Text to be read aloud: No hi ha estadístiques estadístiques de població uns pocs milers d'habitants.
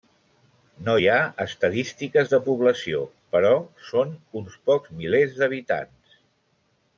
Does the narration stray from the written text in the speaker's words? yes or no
yes